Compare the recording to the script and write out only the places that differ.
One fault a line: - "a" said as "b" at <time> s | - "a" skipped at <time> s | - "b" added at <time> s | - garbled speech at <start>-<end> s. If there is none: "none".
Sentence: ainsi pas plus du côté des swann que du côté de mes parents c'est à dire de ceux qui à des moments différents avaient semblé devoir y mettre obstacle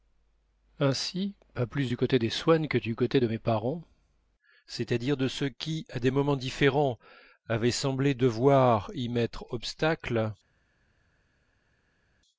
none